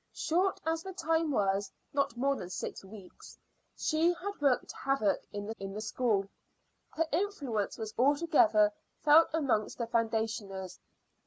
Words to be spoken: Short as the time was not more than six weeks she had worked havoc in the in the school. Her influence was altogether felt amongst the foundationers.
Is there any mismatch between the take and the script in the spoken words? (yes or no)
no